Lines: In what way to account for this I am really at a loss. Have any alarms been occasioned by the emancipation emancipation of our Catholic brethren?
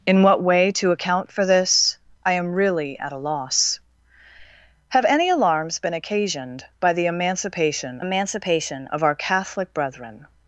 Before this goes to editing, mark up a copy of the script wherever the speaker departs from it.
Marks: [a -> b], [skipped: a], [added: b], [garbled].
In what way to account for this I am really at a loss. Have any alarms been occasioned by the emancipation emancipation of our Catholic brethren?